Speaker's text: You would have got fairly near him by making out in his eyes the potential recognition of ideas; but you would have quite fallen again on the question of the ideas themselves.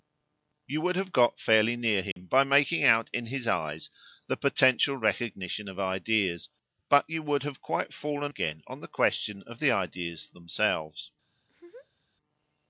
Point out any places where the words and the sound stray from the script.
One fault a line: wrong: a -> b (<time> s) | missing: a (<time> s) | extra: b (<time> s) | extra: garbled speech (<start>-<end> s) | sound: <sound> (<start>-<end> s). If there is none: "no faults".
sound: dropout (2.1-2.2 s)
sound: laugh (11.4-12.1 s)